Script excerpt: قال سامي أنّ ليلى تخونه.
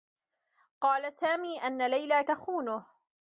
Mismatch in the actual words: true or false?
false